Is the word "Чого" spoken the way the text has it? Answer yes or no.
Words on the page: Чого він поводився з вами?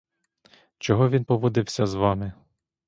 yes